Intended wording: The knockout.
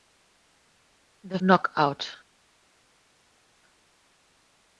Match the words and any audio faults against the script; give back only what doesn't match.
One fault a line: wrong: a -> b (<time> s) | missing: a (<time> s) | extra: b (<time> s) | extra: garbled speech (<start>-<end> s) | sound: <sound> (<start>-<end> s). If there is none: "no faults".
no faults